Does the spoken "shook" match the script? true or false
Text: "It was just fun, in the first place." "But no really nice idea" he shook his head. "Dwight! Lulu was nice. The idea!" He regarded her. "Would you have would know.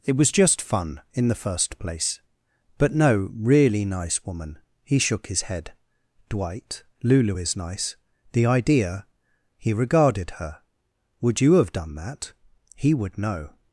true